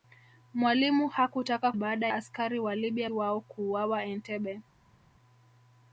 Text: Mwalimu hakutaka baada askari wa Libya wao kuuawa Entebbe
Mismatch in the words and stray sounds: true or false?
false